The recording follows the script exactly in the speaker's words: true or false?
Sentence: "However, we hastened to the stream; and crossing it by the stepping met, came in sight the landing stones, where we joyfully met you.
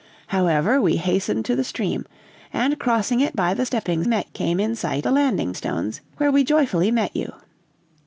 true